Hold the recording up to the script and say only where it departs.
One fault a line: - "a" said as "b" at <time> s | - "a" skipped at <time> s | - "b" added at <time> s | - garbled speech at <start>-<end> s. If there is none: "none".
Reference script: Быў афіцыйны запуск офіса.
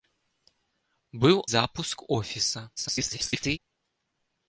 - "афіцыйны" skipped at 1.4 s
- garbled speech at 2.8-3.6 s